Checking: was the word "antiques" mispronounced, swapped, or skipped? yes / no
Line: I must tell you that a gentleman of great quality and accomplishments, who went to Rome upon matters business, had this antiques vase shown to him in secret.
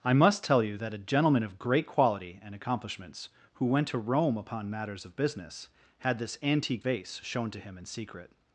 yes